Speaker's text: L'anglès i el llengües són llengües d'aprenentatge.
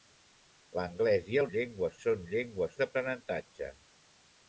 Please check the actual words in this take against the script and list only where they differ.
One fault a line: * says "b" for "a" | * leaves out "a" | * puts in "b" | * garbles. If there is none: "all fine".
all fine